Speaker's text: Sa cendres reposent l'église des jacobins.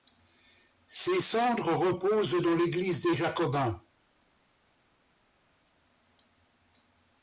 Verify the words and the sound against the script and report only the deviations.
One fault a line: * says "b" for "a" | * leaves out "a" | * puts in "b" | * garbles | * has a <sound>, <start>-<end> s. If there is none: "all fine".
* says "Ses" for "Sa"
* puts in "dans"